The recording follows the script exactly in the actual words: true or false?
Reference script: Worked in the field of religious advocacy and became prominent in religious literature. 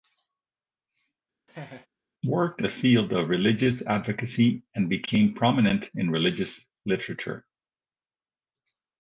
false